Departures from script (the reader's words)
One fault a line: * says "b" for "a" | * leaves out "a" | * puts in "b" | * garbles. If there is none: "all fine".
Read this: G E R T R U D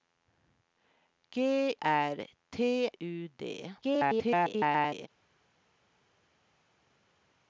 * leaves out "E"
* leaves out "R"
* garbles